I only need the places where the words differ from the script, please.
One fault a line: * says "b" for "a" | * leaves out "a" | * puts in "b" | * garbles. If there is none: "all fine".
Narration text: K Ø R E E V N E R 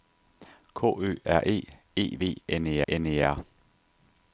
* puts in "N E"